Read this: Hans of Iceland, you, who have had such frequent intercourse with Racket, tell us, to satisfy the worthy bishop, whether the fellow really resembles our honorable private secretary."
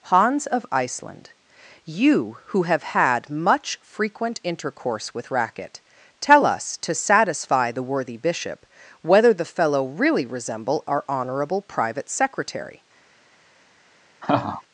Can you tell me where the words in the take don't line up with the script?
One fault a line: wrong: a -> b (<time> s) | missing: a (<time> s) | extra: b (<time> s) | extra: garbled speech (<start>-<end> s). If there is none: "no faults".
wrong: such -> much (3.3 s)
wrong: resembles -> resemble (10.2 s)